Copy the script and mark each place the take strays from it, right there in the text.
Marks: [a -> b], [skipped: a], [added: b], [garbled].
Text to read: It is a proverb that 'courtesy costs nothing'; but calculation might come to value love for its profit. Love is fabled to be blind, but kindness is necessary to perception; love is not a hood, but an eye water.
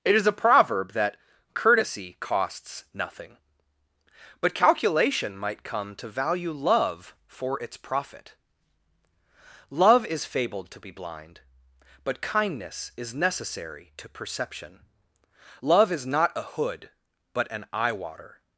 It is a proverb that 'courtesy costs nothing'; but calculation might come to value love for its profit. Love is fabled to be blind, but kindness is necessary to perception; love is not a hood, but an eye water.